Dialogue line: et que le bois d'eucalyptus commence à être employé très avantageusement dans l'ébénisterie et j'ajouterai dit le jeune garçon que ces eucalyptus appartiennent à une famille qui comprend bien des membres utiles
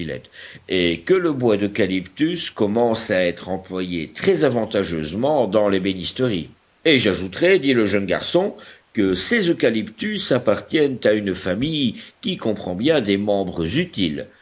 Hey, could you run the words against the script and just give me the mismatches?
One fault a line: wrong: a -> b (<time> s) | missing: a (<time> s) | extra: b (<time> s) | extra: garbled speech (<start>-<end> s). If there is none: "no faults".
no faults